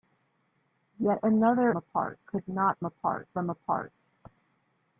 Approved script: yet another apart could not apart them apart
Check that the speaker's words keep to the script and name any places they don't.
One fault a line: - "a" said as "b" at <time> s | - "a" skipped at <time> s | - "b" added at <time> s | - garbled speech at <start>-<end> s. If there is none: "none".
none